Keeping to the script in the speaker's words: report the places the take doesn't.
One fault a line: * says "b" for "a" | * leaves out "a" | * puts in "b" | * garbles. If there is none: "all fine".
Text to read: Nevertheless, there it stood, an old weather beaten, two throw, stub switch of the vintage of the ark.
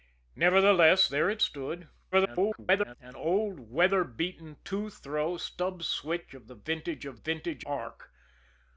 * garbles
* says "vintage" for "the"